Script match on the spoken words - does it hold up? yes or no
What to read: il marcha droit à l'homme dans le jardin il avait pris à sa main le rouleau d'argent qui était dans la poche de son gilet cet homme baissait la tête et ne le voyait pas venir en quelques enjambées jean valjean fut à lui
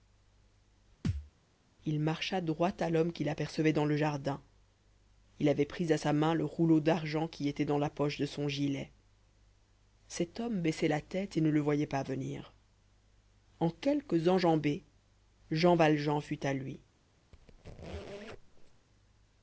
no